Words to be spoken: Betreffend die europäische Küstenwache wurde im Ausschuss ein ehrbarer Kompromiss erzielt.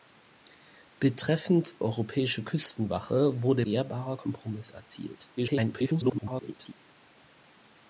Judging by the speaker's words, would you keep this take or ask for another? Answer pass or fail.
fail